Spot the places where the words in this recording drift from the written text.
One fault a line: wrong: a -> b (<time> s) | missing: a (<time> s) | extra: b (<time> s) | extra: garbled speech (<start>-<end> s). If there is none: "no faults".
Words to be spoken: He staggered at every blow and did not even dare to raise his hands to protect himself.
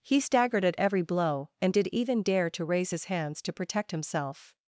missing: not (1.9 s)